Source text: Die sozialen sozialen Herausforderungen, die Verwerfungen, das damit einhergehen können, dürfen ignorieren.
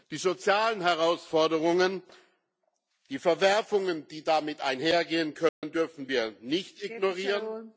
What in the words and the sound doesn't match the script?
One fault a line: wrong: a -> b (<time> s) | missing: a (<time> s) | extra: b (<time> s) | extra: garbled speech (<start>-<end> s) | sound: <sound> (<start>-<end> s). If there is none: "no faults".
missing: sozialen (0.8 s)
wrong: das -> die (4.1 s)
sound: dropout (5.5-5.6 s)
extra: wir nicht (6.1 s)